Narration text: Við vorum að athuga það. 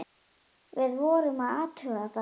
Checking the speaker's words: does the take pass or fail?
pass